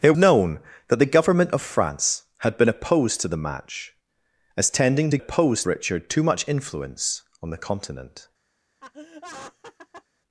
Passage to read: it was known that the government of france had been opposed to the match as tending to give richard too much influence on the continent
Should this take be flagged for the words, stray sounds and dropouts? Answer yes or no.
yes